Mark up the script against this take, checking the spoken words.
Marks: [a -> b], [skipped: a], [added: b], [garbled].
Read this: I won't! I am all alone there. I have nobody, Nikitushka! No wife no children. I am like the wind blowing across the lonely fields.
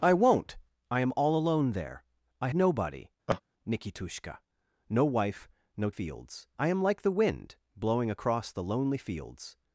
I won't! I am all alone there. I [skipped: have] nobody, Nikitushka! No wife no [children. -> fields] I am like the wind blowing across the lonely fields.